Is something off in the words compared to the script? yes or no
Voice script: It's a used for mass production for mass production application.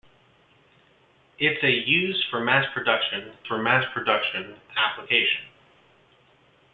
no